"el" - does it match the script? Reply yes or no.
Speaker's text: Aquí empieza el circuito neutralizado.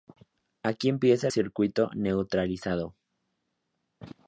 no